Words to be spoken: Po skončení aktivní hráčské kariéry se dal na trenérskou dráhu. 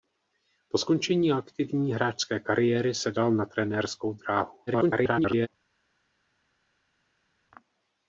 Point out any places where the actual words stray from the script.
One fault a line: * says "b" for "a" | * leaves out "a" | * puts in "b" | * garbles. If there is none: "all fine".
* garbles